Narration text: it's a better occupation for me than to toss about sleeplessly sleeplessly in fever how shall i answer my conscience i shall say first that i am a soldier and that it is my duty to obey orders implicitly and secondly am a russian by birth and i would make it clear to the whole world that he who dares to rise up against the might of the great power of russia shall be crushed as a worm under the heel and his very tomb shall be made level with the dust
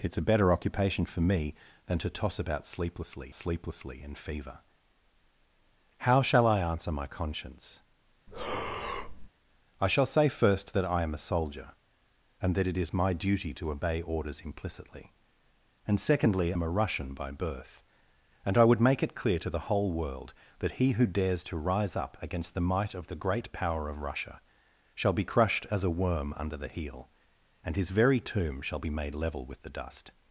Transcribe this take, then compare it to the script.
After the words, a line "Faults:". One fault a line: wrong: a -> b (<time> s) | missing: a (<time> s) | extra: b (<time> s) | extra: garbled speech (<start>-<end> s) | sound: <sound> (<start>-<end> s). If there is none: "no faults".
it's a better occupation for me than to toss about sleeplessly sleeplessly in fever how shall i answer my conscience i shall say first that i am a soldier and that it is my duty to obey orders implicitly and secondly am a russian by birth and i would make it clear to the whole world that he who dares to rise up against the might of the great power of russia shall be crushed as a worm under the heel and his very tomb shall be made level with the dust
Faults:
sound: breath (8.3-9.3 s)